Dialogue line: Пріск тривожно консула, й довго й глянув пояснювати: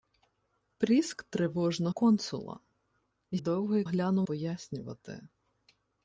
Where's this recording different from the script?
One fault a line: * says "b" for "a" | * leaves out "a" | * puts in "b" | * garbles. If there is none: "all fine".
all fine